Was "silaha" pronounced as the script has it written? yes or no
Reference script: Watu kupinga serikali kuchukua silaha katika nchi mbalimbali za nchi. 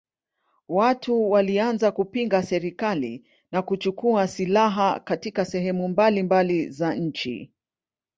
yes